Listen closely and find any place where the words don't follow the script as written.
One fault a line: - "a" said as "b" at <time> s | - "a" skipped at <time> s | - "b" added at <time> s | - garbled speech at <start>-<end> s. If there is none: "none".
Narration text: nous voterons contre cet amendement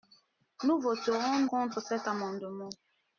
none